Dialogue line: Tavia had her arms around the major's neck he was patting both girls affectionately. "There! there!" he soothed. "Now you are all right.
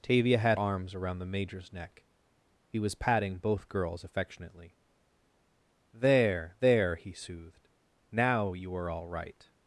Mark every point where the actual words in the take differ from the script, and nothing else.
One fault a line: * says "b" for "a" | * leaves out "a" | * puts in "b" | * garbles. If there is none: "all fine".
* leaves out "her"